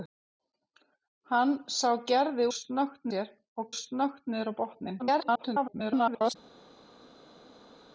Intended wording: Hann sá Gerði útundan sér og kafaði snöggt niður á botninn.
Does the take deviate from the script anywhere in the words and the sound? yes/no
yes